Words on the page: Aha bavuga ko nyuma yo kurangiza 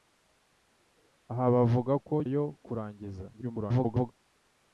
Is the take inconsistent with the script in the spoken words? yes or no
yes